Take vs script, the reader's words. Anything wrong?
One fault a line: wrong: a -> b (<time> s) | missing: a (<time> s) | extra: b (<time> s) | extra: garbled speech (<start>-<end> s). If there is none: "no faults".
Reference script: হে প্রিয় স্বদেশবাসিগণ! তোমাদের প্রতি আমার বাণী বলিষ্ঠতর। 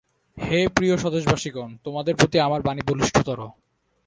no faults